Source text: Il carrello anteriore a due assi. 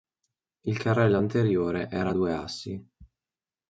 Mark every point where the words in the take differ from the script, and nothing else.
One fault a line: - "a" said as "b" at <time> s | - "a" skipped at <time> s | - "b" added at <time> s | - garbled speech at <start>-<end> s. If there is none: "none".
- "era" added at 1.9 s